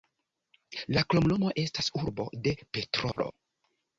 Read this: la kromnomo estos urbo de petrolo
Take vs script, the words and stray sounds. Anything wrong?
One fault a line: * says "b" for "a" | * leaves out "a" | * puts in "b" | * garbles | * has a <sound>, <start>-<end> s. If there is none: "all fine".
* says "estas" for "estos"
* has a dropout, 3.1-3.2 s